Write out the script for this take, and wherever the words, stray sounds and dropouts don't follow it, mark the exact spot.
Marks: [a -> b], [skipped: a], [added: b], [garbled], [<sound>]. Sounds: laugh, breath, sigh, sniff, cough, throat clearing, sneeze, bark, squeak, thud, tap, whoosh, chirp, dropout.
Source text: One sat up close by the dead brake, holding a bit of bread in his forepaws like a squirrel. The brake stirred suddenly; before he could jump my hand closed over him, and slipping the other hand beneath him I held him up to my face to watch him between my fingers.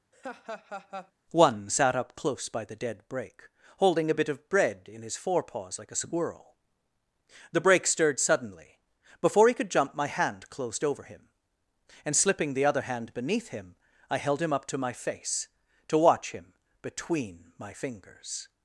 [laugh] One sat up close by the dead brake, holding a bit of bread in his forepaws like a squirrel. The brake stirred suddenly; before he could jump my hand closed over him, and slipping the other hand beneath him I held him up to my face to watch him between my fingers.